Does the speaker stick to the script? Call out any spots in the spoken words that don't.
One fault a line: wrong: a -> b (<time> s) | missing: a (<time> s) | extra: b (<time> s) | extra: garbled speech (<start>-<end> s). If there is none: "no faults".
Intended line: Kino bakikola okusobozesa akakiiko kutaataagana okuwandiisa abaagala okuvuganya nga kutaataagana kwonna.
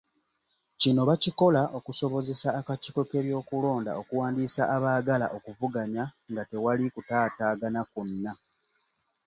wrong: kutaataagana -> k'ebyokulonda (3.1 s)
extra: tewali (6.5 s)